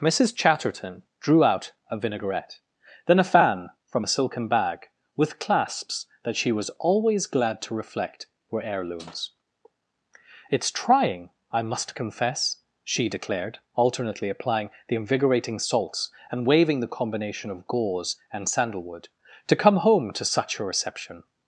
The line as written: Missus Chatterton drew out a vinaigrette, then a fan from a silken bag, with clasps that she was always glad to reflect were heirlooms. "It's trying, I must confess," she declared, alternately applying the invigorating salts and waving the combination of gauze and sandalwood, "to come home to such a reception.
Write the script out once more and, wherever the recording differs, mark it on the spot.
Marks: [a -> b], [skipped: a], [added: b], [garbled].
Missus Chatterton drew out a vinaigrette, then a fan from a silken bag, with clasps that she was always glad to reflect were heirlooms. "It's trying, I must confess," she declared, alternately applying the invigorating salts and waving the combination of gauze and sandalwood, "to come home to such a reception.